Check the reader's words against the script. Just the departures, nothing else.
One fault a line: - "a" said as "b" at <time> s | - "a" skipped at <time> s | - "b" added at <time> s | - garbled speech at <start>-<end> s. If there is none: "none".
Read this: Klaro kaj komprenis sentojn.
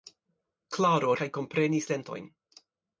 none